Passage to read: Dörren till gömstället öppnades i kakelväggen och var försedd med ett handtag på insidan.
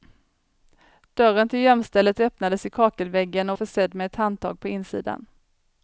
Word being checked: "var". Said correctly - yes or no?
no